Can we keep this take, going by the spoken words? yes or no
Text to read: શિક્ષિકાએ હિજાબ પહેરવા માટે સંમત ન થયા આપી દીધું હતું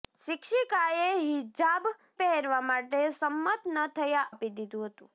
yes